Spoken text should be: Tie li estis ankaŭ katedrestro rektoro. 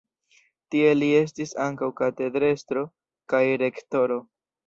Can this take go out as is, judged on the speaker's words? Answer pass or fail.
fail